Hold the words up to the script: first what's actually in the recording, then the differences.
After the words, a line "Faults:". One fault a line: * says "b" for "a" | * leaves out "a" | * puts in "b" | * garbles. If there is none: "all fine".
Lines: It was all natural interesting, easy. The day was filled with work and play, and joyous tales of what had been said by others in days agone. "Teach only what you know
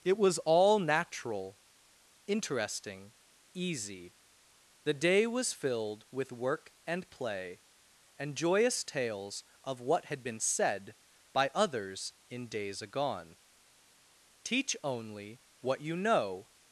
It was all natural interesting, easy. The day was filled with work and play, and joyous tales of what had been said by others in days agone. "Teach only what you know
Faults:
all fine